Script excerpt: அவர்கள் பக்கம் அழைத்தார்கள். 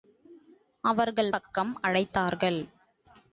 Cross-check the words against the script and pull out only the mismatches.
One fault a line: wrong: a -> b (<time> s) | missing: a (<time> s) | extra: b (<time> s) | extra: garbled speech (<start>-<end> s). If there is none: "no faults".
no faults